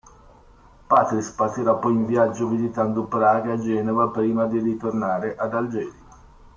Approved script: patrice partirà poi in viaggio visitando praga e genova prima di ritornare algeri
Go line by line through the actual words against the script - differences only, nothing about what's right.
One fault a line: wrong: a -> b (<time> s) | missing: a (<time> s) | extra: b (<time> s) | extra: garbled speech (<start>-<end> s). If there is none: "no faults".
extra: ad (5.3 s)